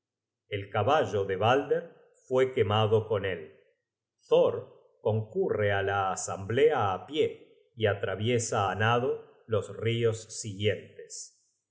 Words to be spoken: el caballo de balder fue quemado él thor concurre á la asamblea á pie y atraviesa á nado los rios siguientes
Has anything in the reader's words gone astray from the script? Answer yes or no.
yes